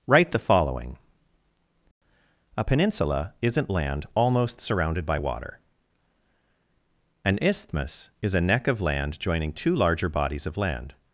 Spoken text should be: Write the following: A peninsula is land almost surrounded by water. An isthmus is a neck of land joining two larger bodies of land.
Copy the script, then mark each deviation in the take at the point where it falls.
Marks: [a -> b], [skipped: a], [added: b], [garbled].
Write the following: A peninsula [is -> isn't] land almost surrounded by water. An isthmus is a neck of land joining two larger bodies of land.